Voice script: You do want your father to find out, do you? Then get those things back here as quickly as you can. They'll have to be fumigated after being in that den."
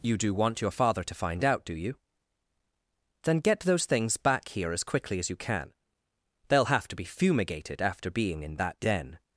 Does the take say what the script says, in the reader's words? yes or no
yes